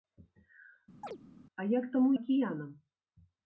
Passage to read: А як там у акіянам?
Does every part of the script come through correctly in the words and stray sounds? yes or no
no